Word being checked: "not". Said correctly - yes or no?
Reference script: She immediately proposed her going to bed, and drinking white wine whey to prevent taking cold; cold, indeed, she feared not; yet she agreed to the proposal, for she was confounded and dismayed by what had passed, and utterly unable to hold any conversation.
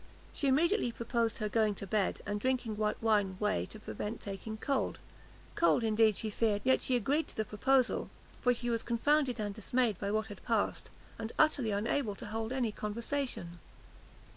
no